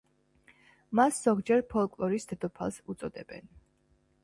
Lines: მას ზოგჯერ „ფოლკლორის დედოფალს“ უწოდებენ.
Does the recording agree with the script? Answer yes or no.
yes